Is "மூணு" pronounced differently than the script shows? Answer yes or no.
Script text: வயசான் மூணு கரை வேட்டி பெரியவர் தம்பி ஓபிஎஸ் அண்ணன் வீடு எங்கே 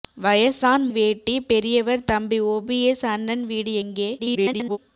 yes